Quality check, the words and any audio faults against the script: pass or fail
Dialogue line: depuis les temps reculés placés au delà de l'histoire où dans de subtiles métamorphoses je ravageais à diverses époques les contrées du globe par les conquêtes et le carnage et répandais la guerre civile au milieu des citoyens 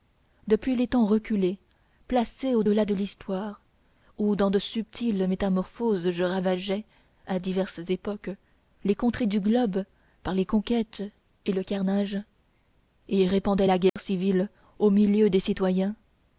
fail